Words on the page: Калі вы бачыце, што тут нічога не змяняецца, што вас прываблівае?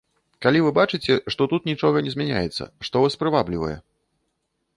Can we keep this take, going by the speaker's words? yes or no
yes